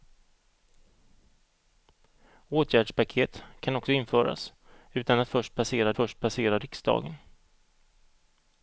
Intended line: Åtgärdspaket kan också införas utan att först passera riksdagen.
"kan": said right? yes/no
yes